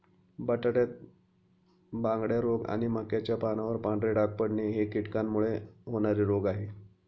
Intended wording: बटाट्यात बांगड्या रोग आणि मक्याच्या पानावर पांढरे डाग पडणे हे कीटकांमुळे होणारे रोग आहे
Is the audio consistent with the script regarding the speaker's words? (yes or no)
yes